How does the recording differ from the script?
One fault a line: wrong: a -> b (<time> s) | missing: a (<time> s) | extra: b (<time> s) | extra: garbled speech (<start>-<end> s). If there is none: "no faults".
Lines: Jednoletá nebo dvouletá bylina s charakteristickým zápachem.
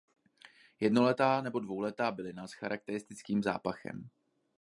no faults